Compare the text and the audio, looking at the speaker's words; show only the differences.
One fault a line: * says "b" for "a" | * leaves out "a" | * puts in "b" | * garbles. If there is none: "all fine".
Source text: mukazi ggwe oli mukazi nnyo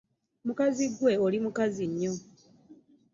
all fine